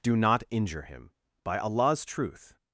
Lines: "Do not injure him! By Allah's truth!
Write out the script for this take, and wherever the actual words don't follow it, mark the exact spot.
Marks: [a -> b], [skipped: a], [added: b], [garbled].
"Do not injure him! By Allah's truth!